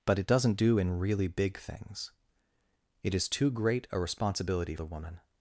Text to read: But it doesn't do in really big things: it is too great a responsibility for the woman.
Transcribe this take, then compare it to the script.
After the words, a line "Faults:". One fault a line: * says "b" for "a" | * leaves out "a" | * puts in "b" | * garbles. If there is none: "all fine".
But it doesn't do in really big things: it is too great a responsibility the woman.
Faults:
* leaves out "for"